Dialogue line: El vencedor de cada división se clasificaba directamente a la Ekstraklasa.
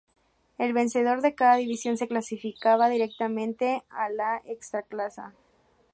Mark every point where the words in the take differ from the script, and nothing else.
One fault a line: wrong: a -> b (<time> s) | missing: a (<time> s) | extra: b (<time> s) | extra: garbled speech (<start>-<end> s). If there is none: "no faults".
no faults